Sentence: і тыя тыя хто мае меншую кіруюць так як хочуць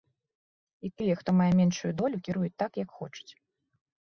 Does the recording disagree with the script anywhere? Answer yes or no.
yes